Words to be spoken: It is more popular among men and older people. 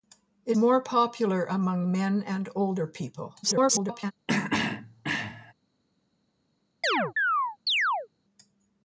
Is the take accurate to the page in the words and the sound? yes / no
no